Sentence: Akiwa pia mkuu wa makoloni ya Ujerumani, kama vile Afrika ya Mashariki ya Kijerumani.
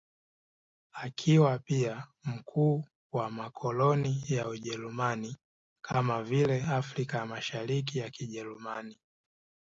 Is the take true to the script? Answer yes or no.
yes